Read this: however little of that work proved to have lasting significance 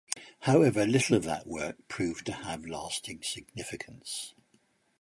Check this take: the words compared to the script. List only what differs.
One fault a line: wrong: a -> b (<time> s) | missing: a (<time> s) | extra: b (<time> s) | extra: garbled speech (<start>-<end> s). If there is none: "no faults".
no faults